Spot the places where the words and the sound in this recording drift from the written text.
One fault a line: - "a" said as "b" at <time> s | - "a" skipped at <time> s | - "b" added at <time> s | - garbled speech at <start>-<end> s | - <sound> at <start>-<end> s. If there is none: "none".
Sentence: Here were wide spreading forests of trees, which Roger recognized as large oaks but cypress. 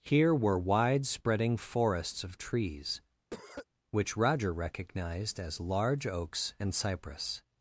- cough at 3.3-3.7 s
- "but" said as "and" at 6.6 s